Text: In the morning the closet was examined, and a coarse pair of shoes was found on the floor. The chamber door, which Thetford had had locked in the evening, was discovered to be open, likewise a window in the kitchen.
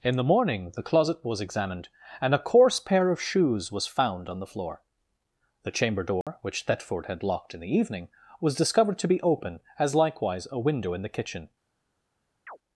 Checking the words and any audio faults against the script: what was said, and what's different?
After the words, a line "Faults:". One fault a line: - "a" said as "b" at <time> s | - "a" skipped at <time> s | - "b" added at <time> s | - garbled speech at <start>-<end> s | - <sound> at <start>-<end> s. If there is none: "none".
In the morning the closet was examined, and a coarse pair of shoes was found on the floor. The chamber door, which Thetford had locked in the evening, was discovered to be open, as likewise a window in the kitchen.
Faults:
- dropout at 6.2-6.3 s
- "had" skipped at 7.2 s
- "as" added at 9.8 s
- chirp at 12.5-12.6 s